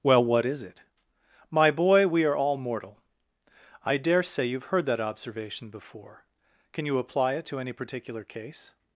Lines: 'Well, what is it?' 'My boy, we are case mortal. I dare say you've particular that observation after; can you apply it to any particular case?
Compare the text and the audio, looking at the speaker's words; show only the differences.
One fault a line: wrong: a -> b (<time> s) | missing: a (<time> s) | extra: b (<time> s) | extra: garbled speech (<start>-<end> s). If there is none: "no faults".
wrong: case -> all (2.4 s)
wrong: particular -> heard (4.7 s)
wrong: after -> before (5.7 s)